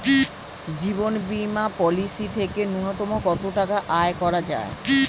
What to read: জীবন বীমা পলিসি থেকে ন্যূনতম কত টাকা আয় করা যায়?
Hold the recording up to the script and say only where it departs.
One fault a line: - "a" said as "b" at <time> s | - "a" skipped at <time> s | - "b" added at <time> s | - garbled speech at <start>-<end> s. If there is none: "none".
none